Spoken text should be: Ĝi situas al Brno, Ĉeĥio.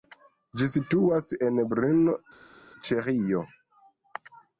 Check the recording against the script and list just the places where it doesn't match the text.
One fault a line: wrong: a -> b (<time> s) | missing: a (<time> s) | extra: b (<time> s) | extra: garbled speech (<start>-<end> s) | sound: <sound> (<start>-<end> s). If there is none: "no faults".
wrong: al -> en (1.5 s)